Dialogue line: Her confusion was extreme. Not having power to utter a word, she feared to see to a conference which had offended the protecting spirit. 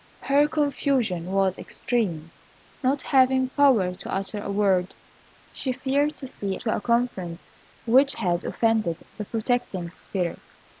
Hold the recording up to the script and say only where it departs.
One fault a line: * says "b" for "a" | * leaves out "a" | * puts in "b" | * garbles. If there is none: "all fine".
all fine